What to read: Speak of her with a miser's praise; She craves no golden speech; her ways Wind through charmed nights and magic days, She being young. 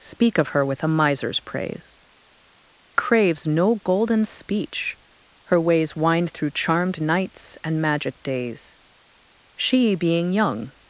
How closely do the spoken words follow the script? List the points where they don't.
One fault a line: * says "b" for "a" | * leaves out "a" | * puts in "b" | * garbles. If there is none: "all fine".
* leaves out "She"